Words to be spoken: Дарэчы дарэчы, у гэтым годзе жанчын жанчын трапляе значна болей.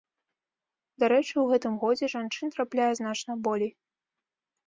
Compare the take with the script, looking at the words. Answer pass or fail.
fail